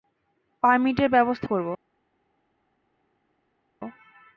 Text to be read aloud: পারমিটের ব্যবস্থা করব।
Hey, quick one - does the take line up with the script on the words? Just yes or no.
yes